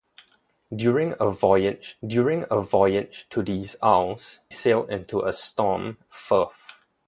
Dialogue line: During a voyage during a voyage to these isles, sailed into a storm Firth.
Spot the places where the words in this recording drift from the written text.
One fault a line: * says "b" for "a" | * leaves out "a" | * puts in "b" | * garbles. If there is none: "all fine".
all fine